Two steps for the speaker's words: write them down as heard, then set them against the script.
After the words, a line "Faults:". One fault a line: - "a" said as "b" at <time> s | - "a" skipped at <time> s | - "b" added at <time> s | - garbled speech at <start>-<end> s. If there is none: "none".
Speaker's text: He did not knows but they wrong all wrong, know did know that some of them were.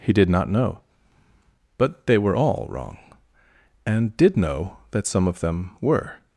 He did not know but they were all wrong, and did know that some of them were.
Faults:
- "knows" said as "know" at 0.5 s
- "wrong" said as "were" at 2.2 s
- "know" said as "and" at 3.9 s